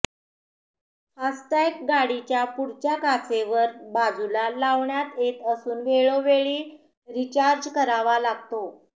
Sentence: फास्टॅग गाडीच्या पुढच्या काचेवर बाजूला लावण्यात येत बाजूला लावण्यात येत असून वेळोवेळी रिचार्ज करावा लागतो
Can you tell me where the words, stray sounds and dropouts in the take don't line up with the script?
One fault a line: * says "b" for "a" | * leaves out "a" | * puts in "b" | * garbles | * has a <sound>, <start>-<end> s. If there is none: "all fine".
* leaves out "बाजूला लावण्यात येत"